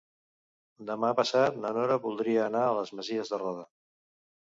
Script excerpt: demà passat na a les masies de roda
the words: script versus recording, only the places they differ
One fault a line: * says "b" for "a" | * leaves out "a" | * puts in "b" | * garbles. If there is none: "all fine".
* puts in "nora voldria anar"